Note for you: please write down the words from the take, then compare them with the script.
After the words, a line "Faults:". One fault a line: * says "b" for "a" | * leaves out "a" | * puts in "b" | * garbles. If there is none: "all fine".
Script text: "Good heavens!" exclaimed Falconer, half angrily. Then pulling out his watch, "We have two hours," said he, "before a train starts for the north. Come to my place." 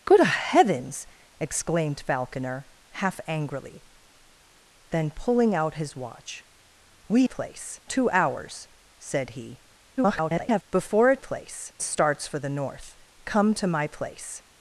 "Good heavens!" exclaimed Falconer, half angrily. Then pulling out his watch, "We place two hours," said he, [garbled] "before a place starts for the north. Come to my place."
Faults:
* says "place" for "have"
* garbles
* says "place" for "train"